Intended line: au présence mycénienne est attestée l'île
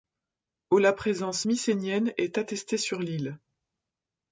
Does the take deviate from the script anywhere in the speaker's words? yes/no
yes